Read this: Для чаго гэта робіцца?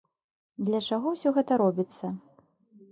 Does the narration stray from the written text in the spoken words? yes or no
yes